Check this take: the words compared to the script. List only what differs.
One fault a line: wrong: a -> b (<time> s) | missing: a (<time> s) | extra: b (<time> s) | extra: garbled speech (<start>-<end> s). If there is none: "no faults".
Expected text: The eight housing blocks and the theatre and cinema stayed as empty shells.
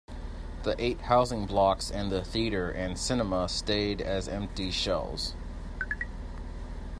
no faults